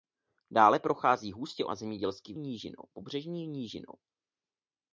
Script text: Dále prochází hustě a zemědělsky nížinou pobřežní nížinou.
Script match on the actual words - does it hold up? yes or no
yes